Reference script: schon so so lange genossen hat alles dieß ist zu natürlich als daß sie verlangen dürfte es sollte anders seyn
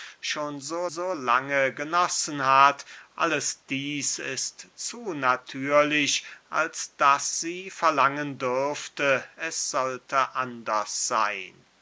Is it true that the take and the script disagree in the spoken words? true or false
false